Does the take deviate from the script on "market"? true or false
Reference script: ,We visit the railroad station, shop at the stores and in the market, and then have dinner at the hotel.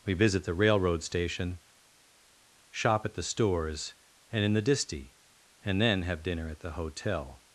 true